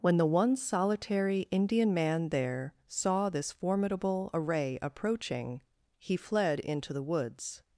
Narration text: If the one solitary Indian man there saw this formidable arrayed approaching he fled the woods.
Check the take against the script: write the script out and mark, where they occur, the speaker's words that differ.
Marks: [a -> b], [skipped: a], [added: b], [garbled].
[If -> When] the one solitary Indian man there saw this formidable [arrayed -> array] approaching he fled [added: into] the woods.